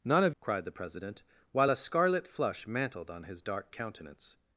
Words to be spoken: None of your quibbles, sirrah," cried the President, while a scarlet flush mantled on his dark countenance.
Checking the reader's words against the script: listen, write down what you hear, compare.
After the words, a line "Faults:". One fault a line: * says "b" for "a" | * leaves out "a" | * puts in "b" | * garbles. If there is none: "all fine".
None of," cried the President, while a scarlet flush mantled on his dark countenance.
Faults:
* leaves out "your quibbles sirrah"